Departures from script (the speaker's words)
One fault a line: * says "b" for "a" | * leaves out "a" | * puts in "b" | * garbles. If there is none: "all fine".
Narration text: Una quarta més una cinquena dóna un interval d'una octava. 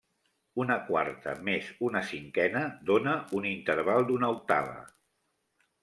all fine